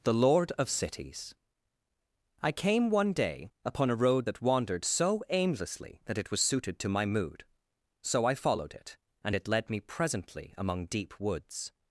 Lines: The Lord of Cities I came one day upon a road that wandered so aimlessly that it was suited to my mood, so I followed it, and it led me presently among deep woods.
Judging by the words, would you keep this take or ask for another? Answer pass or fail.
pass